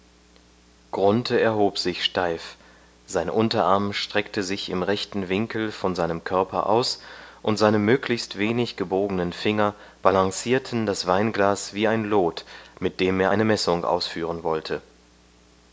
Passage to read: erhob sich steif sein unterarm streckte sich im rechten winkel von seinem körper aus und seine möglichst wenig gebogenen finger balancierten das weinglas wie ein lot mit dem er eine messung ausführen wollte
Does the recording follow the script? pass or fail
pass